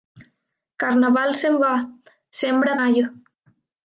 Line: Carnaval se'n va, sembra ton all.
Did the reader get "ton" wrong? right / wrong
wrong